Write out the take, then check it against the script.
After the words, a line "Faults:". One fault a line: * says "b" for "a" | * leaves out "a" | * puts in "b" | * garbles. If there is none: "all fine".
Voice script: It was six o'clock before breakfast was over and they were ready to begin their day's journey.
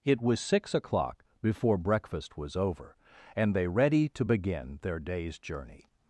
It was six o'clock before breakfast was over and they ready to begin their day's journey.
Faults:
* leaves out "were"